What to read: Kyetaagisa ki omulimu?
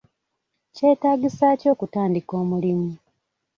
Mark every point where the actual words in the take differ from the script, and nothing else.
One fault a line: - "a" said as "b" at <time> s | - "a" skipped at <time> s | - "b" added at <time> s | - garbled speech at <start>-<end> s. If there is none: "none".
- "okutandika" added at 1.7 s